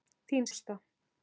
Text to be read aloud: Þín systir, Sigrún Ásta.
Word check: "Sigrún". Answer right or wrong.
wrong